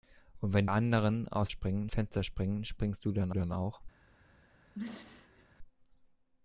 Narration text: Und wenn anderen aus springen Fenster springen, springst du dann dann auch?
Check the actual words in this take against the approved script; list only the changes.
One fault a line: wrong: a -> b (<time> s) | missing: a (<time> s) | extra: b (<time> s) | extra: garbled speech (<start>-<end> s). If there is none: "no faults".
no faults